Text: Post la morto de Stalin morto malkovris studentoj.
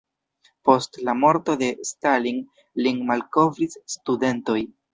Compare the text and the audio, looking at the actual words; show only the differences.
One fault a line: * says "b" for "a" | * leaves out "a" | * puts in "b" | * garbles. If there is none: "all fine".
* says "lin" for "morto"